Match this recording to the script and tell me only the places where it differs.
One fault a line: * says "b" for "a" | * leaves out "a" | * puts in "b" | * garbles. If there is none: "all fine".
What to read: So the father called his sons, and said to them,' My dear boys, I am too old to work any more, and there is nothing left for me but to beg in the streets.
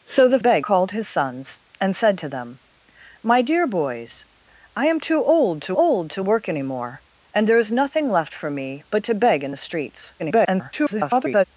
* says "beg" for "father"
* puts in "old to"
* garbles